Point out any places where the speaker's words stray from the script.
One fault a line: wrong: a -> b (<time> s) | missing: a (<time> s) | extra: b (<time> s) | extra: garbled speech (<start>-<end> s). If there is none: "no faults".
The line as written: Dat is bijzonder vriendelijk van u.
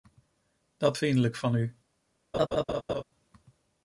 missing: is bijzonder (1.0 s)